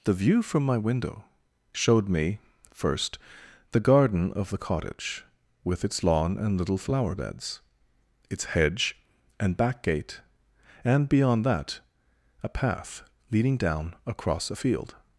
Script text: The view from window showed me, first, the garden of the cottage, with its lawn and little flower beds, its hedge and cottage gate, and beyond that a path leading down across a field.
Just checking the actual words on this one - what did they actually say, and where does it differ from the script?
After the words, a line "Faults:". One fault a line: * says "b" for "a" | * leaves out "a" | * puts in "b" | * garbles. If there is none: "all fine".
The view from my window showed me, first, the garden of the cottage, with its lawn and little flower beds, its hedge and back gate, and beyond that a path leading down across a field.
Faults:
* puts in "my"
* says "back" for "cottage"